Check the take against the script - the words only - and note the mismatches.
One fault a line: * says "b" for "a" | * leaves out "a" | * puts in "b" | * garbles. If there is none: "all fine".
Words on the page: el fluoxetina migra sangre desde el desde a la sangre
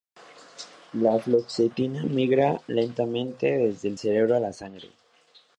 * says "la" for "el"
* says "lentamente" for "sangre"
* says "cerebro" for "desde"